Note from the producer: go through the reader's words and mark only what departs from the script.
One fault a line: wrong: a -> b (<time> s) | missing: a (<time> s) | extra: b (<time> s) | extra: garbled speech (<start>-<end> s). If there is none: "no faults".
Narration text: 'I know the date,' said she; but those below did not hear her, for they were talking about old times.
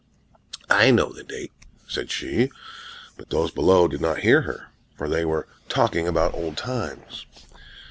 no faults